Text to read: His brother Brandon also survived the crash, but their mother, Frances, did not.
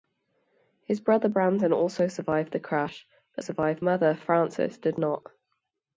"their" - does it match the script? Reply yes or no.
no